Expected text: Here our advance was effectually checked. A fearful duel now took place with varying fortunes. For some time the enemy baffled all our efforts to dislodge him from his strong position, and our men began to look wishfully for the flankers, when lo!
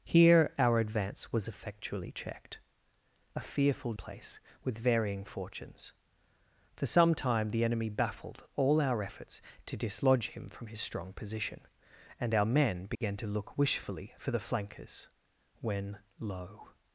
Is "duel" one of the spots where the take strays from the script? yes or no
yes